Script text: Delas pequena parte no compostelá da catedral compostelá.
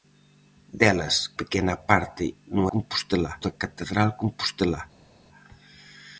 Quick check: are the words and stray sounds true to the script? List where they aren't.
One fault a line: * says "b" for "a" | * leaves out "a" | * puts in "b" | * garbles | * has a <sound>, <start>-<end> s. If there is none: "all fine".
all fine